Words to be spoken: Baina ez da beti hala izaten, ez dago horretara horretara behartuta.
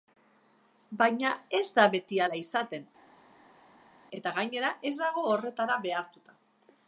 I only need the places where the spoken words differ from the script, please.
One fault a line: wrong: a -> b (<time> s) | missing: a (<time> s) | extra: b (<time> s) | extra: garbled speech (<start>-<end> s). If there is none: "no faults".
extra: eta gainera (4.2 s)
missing: horretara (5.8 s)